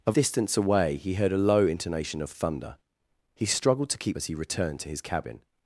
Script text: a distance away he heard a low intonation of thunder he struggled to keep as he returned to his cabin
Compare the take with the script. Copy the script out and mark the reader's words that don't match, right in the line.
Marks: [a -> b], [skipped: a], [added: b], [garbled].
a distance away he heard a low intonation of thunder he struggled to keep as he returned to his cabin